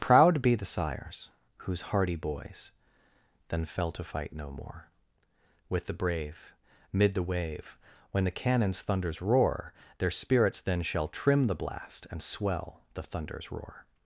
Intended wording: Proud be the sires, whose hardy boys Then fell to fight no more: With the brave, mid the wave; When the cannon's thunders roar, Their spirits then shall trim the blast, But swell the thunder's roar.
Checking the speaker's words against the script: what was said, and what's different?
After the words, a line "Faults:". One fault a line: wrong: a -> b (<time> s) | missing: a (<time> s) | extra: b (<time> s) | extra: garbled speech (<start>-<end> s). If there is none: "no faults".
Proud be the sires, whose hardy boys Then fell to fight no more: With the brave, mid the wave; When the cannon's thunders roar, Their spirits then shall trim the blast, And swell the thunder's roar.
Faults:
wrong: But -> And (12.1 s)